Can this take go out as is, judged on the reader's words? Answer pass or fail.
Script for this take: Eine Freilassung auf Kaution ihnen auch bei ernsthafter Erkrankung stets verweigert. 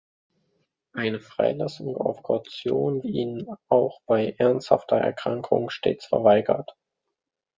pass